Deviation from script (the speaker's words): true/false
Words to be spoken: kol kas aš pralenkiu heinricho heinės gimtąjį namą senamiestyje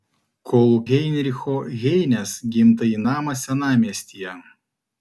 true